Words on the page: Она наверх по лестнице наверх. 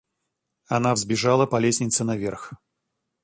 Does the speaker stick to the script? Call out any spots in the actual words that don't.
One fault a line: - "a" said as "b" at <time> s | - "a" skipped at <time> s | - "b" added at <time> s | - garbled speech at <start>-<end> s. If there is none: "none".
- "наверх" said as "взбежала" at 0.9 s